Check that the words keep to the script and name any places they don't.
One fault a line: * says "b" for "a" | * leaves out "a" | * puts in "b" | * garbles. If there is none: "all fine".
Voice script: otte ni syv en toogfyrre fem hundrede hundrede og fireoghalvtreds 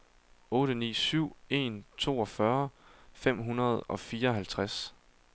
* leaves out "hundrede"